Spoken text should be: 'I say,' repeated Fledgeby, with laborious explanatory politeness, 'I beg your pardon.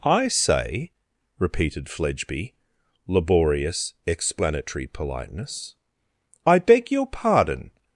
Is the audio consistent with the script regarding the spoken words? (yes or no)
no